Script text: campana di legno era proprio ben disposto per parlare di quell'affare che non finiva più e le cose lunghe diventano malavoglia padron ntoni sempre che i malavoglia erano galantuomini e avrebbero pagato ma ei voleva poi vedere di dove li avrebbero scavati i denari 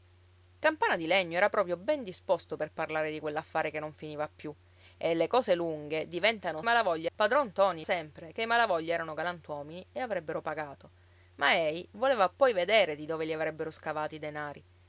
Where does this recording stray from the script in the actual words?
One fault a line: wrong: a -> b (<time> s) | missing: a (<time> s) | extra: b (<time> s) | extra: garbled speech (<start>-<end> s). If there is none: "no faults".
no faults